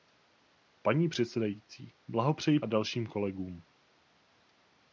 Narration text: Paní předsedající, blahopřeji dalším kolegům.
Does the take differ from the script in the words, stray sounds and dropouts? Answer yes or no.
no